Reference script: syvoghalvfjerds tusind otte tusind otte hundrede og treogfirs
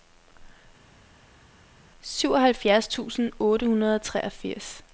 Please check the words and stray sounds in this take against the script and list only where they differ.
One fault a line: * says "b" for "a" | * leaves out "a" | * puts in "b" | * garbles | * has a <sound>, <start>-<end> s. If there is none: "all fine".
* leaves out "tusind otte"